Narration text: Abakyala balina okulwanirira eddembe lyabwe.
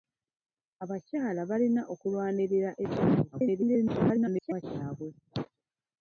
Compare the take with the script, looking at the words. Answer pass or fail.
fail